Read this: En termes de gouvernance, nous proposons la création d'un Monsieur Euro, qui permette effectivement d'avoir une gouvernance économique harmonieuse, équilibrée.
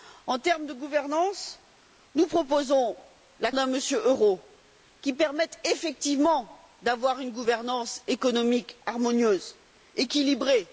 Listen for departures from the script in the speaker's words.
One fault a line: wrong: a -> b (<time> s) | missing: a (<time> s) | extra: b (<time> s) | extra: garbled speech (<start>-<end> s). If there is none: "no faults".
missing: création (3.5 s)